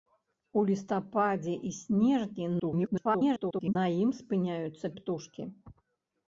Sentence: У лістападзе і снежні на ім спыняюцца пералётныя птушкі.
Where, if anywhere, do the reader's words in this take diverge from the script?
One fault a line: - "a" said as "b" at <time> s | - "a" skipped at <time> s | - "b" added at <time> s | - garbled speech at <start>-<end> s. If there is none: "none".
- garbled speech at 2.6-3.8 s
- "пералётныя" skipped at 4.9 s